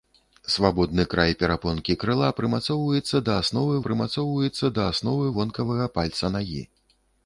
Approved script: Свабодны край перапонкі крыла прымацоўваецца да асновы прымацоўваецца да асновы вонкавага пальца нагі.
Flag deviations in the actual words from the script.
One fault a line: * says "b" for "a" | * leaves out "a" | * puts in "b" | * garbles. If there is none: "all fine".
all fine